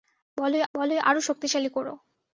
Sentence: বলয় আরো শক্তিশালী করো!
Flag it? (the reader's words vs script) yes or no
yes